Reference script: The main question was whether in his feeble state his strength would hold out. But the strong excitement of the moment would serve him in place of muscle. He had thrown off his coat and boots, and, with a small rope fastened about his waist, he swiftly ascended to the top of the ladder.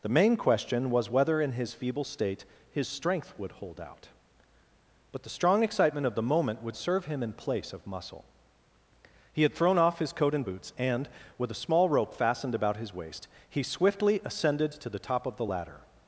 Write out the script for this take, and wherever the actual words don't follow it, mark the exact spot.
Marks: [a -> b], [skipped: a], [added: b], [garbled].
The main question was whether in his feeble state his strength would hold out. But the strong excitement of the moment would serve him in place of muscle. He had thrown off his coat and boots, and, with a small rope fastened about his waist, he swiftly ascended to the top of the ladder.